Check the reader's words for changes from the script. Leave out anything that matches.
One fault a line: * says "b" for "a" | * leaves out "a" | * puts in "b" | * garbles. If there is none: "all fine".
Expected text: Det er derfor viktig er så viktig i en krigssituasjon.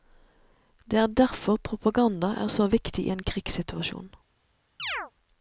* says "propaganda" for "viktig"